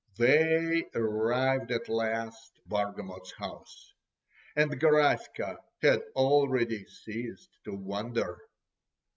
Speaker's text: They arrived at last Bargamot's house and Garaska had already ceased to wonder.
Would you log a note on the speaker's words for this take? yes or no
no